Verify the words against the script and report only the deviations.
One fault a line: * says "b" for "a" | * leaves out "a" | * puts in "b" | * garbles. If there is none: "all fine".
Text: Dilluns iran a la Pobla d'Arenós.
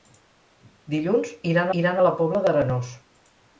* puts in "iran"